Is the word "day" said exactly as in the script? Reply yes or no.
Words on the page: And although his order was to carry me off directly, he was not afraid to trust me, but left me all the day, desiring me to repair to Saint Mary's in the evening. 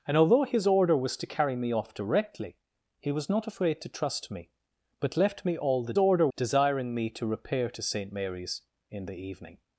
no